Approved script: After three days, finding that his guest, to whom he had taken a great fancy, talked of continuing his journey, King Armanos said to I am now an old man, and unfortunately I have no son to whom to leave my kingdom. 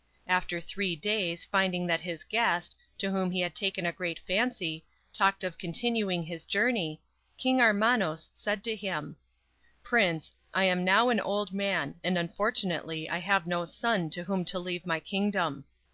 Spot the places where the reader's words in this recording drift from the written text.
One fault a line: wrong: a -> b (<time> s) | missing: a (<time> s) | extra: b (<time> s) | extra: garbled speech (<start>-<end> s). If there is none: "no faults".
extra: him Prince (8.8 s)